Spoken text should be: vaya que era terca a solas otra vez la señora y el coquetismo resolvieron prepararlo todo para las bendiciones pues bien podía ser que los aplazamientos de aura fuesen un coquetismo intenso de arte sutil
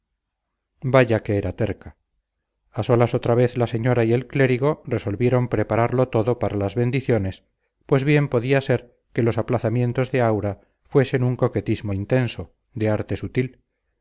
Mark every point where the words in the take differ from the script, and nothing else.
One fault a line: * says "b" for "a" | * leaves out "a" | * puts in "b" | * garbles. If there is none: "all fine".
* says "clérigo" for "coquetismo"